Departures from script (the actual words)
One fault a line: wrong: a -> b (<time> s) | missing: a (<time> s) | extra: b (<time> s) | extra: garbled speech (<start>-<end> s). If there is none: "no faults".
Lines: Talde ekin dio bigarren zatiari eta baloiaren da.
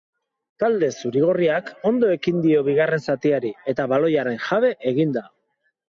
extra: zuri gorriak ondo (1.0 s)
extra: jabe egin (4.5 s)